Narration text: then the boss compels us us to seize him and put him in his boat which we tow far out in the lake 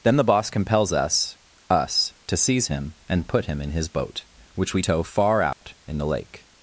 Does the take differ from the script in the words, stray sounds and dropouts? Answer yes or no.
yes